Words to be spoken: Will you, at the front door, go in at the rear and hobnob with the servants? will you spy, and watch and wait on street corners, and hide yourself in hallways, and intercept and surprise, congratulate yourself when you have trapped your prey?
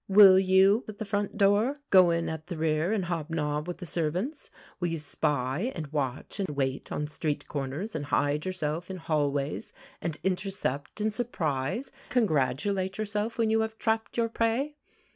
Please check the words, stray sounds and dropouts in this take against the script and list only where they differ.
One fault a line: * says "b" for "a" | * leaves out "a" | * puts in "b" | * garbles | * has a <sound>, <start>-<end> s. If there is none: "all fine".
* has a dropout, 6.5-6.5 s